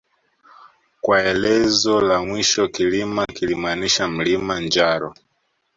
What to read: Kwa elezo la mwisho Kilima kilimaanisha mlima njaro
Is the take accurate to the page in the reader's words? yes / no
yes